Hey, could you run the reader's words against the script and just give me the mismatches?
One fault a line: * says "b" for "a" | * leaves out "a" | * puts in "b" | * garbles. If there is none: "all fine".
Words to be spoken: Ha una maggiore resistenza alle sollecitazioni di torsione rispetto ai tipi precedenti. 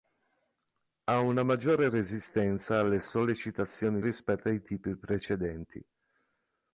* leaves out "di torsione"